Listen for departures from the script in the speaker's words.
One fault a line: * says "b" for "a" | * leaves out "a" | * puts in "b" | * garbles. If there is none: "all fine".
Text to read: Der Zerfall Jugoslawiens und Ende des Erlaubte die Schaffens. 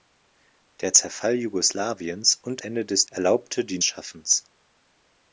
all fine